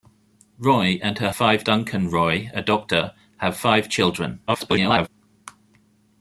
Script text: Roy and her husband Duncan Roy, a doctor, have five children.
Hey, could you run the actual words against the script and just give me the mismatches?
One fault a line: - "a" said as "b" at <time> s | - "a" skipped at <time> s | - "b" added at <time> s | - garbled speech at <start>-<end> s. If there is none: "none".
- "husband" said as "five" at 1.3 s
- garbled speech at 4.5-5.1 s